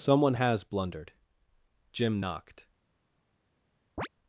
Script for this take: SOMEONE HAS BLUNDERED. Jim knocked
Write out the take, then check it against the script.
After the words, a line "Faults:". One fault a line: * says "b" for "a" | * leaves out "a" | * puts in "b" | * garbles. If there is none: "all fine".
SOMEONE HAS BLUNDERED. Jim knocked
Faults:
all fine